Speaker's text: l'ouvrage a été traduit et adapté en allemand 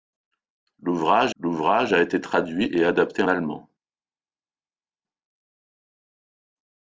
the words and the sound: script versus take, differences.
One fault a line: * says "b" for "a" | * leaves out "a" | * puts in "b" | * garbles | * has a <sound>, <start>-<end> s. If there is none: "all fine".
* puts in "l'ouvrage"
* leaves out "en"